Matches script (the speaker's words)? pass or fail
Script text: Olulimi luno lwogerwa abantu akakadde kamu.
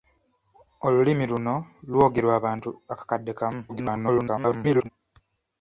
fail